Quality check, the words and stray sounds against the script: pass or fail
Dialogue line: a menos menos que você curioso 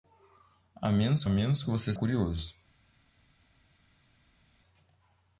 pass